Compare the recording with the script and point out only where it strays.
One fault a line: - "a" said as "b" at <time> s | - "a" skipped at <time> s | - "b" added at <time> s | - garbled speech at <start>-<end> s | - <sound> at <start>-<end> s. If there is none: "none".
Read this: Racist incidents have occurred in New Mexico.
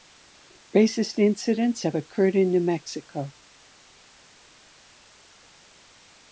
none